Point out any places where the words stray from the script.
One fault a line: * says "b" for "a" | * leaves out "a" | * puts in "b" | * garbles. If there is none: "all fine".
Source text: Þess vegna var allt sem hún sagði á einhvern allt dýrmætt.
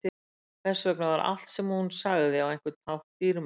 * says "hátt" for "allt"